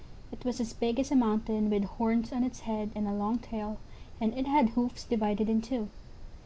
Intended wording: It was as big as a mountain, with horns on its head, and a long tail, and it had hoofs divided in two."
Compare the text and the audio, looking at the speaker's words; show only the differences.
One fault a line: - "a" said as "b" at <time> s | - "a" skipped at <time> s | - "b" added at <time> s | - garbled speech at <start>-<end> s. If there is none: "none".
none